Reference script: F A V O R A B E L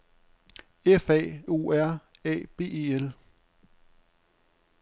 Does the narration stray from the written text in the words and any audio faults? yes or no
yes